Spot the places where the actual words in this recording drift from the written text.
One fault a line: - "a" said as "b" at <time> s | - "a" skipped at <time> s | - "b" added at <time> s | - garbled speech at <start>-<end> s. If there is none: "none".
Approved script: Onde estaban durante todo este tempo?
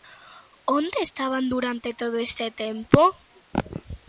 none